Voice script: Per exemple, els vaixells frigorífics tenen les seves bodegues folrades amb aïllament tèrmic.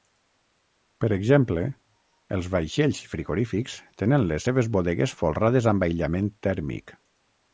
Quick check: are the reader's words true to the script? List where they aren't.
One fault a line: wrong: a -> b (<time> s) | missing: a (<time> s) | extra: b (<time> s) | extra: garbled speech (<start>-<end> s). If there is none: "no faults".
no faults